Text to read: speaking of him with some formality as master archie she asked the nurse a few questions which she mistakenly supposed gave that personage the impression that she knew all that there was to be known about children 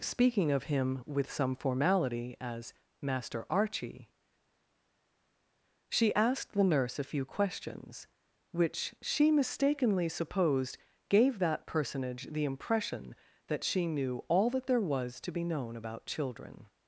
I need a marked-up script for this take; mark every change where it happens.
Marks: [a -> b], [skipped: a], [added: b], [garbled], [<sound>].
speaking of him with some formality as master archie she asked the nurse a few questions which she mistakenly supposed gave that personage the impression that she knew all that there was to be known about children